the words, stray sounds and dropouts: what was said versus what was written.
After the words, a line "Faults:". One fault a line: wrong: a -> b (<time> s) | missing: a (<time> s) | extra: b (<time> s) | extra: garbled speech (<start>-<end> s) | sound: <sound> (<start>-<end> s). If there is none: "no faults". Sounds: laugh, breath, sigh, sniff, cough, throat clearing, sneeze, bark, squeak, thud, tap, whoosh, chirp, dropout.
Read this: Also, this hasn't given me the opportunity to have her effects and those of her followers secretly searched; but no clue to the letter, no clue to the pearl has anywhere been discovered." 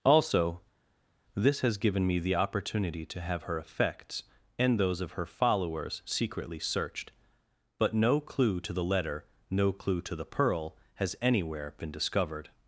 Also, this has given me the opportunity to have her effects and those of her followers secretly searched; but no clue to the letter, no clue to the pearl has anywhere been discovered."
Faults:
wrong: hasn't -> has (1.6 s)